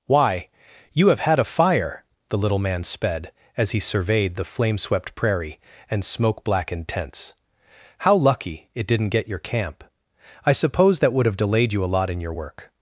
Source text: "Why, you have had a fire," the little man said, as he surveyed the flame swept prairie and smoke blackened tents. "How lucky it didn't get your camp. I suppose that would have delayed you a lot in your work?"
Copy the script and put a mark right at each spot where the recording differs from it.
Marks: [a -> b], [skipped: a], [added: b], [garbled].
"Why, you have had a fire," the little man [said, -> sped] as he surveyed the flame swept prairie and smoke blackened tents. "How lucky it didn't get your camp. I suppose that would have delayed you a lot in your work?"